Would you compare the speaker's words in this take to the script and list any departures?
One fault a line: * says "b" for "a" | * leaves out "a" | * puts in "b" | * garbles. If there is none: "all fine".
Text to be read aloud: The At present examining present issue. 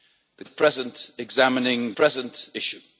all fine